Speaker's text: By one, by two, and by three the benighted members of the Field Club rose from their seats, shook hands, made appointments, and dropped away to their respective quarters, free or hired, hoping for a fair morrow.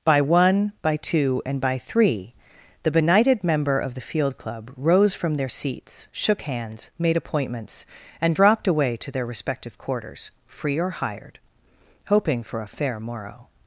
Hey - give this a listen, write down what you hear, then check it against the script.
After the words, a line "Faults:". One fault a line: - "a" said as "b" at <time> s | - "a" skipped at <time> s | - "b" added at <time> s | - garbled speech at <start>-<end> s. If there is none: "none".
By one, by two, and by three the benighted member of the Field Club rose from their seats, shook hands, made appointments, and dropped away to their respective quarters, free or hired, hoping for a fair morrow.
Faults:
- "members" said as "member" at 3.4 s